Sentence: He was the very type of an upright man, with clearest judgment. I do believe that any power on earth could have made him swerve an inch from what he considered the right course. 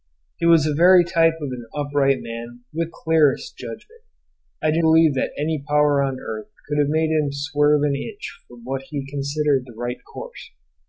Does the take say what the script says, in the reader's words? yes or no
yes